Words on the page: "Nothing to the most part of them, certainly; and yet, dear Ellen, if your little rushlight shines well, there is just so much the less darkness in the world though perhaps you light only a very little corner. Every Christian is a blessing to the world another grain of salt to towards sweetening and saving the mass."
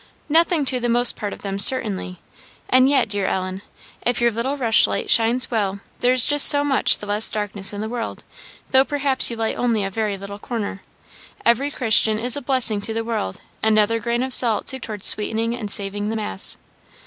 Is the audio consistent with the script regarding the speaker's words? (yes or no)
yes